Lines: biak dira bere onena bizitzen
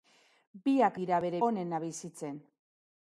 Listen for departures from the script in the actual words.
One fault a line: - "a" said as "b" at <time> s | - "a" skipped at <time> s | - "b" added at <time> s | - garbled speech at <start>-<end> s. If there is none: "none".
none